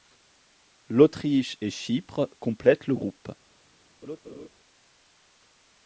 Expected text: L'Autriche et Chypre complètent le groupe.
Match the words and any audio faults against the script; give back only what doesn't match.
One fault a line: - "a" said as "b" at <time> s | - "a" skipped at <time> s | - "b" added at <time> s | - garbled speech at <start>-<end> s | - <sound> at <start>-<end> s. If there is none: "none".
- laugh at 4.0-4.5 s